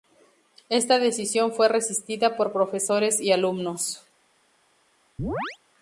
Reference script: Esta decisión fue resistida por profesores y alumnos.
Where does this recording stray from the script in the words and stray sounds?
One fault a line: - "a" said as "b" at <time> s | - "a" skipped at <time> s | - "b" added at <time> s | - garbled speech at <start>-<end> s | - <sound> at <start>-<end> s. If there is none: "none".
- chirp at 5.2-5.6 s